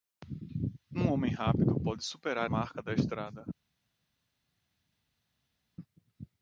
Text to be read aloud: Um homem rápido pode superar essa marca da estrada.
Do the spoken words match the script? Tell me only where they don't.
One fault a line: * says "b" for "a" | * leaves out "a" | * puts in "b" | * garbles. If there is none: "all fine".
* leaves out "essa"